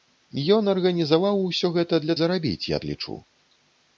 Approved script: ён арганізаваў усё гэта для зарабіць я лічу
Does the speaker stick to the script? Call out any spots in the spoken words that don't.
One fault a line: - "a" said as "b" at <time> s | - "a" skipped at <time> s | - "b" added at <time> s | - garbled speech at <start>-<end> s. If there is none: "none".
none